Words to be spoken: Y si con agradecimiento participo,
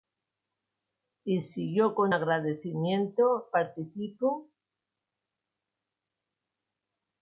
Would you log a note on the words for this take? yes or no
yes